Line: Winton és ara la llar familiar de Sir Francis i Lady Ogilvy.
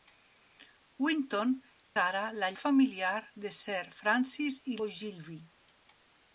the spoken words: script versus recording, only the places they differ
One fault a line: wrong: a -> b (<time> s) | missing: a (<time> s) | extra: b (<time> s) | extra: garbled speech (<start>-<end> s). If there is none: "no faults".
missing: és (1.5 s)
missing: llar (2.5 s)
missing: Lady (4.8 s)